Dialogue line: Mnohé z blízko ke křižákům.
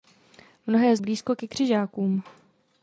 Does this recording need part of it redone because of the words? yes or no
no